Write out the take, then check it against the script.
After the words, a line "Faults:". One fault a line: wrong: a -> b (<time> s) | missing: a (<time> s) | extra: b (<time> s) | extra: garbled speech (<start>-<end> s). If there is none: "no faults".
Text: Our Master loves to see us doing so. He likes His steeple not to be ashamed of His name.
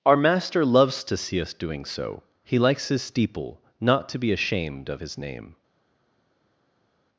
Our Master loves to see us doing so. He likes His steeple not to be ashamed of His name.
Faults:
no faults